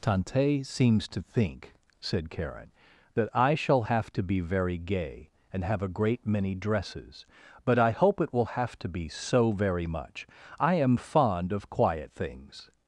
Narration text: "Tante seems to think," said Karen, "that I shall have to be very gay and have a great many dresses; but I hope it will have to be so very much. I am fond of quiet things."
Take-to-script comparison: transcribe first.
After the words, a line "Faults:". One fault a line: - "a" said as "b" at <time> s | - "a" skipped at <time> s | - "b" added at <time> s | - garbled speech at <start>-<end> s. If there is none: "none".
"Tante seems to think," said Karen, "that I shall have to be very gay and have a great many dresses; but I hope it will have to be so very much. I am fond of quiet things."
Faults:
none